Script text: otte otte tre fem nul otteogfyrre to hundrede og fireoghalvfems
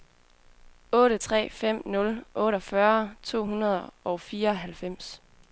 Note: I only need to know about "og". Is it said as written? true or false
true